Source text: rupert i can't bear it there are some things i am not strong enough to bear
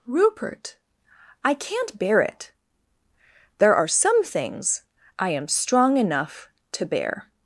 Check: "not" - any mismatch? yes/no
yes